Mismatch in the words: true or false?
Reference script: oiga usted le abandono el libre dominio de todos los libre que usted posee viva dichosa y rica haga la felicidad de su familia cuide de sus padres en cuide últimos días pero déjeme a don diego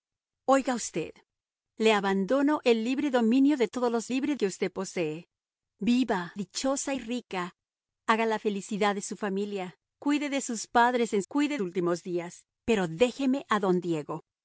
false